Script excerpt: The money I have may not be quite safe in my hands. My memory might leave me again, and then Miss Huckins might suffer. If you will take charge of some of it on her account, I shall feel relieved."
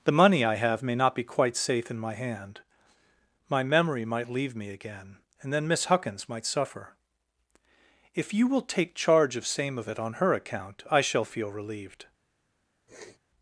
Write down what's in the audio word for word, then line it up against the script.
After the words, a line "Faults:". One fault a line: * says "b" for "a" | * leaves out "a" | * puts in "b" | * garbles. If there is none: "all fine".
The money I have may not be quite safe in my hand. My memory might leave me again, and then Miss Huckins might suffer. If you will take charge of same of it on her account, I shall feel relieved."
Faults:
* says "hand" for "hands"
* says "same" for "some"